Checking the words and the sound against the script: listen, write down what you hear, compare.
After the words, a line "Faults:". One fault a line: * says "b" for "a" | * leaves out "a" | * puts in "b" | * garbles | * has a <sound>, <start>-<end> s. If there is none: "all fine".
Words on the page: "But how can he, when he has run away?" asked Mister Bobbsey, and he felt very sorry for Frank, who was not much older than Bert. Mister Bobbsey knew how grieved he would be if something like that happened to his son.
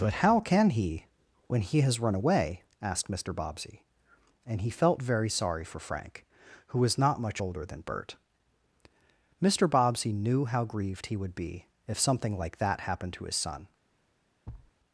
"But how can he, when he has run away?" asked Mister Bobbsey, and he felt very sorry for Frank, who was not much older than Bert. Mister Bobbsey knew how grieved he would be if something like that happened to his son.
Faults:
* has a thud, 14.5-14.7 s